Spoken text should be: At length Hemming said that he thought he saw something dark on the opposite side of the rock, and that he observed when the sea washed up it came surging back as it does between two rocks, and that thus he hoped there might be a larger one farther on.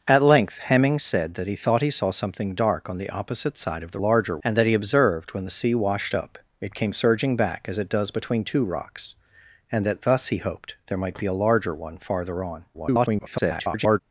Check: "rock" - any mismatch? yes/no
yes